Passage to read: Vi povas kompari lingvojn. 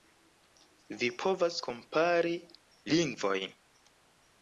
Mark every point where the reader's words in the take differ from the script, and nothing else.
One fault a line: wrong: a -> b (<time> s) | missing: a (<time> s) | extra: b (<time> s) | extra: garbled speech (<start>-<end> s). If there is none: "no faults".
no faults